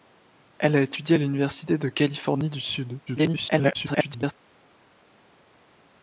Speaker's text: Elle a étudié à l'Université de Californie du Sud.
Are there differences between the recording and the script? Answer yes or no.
yes